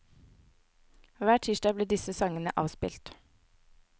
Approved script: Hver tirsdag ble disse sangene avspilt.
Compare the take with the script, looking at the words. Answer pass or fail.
pass